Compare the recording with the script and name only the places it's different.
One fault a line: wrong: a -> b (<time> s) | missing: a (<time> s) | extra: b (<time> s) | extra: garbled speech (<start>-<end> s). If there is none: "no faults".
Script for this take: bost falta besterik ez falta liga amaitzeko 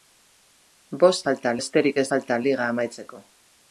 no faults